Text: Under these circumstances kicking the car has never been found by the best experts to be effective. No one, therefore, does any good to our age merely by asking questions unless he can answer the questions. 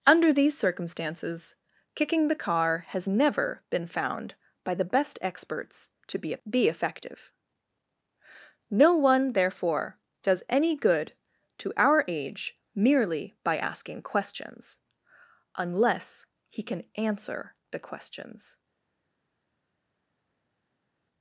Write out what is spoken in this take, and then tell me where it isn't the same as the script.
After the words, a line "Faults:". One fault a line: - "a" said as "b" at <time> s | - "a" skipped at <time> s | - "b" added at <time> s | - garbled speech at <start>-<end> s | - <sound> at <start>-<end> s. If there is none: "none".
Under these circumstances kicking the car has never been found by the best experts to be be effective. No one, therefore, does any good to our age merely by asking questions unless he can answer the questions.
Faults:
- "be" added at 6.5 s